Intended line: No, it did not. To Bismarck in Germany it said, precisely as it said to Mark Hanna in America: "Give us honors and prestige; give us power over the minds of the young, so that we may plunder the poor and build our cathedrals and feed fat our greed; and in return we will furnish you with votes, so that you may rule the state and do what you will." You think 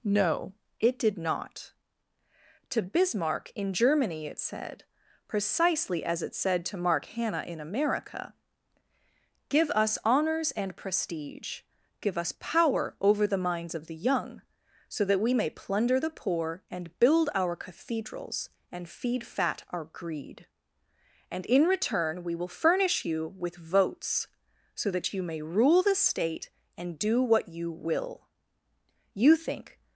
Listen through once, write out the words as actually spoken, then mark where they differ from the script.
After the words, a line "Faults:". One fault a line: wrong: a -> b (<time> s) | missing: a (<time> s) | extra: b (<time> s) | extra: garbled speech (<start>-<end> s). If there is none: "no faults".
No, it did not. To Bismarck in Germany it said, precisely as it said to Mark Hanna in America: "Give us honors and prestige; give us power over the minds of the young, so that we may plunder the poor and build our cathedrals and feed fat our greed; and in return we will furnish you with votes, so that you may rule the state and do what you will." You think
Faults:
no faults